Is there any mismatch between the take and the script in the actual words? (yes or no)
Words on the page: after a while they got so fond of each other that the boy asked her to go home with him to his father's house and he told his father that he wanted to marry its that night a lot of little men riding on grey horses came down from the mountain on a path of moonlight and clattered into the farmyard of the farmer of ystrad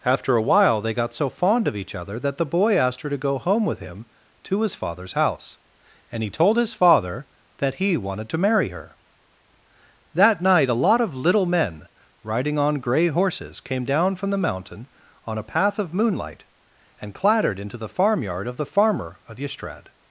yes